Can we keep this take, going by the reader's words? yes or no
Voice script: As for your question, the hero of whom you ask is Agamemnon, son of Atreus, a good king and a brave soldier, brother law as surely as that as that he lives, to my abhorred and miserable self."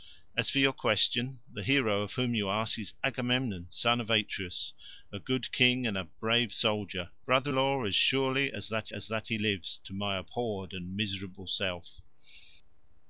yes